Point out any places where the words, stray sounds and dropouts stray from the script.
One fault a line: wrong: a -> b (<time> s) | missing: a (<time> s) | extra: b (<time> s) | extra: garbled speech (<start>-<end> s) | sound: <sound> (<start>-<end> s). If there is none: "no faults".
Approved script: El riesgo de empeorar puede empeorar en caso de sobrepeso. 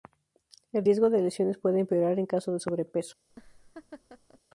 wrong: empeorar -> lesiones (1.2 s)
sound: laugh (3.3-4.4 s)